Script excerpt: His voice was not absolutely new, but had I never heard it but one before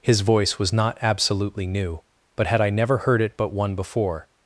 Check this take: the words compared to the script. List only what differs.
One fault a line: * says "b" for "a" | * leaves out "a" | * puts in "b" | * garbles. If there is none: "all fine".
all fine